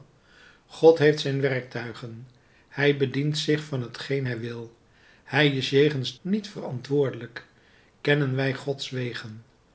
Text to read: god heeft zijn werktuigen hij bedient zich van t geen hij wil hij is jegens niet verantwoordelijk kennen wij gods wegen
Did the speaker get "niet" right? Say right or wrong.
right